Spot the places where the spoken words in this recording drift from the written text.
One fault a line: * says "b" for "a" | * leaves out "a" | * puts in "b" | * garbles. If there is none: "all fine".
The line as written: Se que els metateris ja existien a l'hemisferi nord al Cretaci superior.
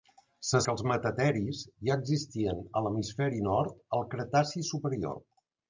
all fine